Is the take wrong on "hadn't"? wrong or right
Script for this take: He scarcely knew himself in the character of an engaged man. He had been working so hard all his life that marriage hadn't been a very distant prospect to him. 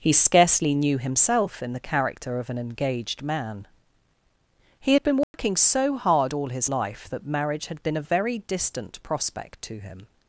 wrong